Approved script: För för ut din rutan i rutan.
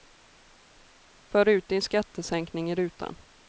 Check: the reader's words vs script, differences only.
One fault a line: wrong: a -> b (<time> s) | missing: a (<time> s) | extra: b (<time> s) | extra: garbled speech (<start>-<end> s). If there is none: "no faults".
missing: för (1.5 s)
wrong: rutan -> skattesänkning (1.8 s)